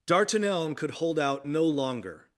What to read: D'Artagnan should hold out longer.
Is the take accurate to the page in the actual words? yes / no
no